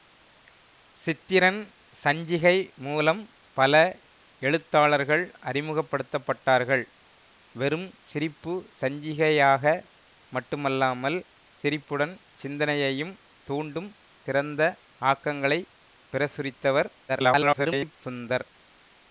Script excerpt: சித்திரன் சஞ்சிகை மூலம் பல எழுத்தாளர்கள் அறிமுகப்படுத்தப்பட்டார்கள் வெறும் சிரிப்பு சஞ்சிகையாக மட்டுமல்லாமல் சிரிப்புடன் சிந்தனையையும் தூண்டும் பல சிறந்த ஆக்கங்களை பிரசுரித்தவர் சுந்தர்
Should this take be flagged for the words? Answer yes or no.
yes